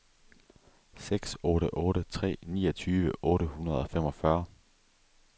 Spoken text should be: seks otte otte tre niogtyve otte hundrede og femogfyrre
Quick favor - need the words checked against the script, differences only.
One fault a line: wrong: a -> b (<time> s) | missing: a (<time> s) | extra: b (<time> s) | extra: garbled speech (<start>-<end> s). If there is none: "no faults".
no faults